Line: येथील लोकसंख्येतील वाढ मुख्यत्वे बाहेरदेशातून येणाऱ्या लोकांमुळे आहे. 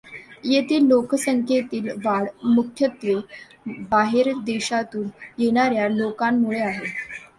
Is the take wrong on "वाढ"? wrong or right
right